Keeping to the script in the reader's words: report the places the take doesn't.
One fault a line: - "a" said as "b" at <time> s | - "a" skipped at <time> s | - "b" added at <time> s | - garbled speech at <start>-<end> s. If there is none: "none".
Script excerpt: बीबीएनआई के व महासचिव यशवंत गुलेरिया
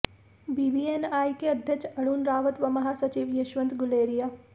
- "अध्यक्ष अरुण रावत" added at 1.5 s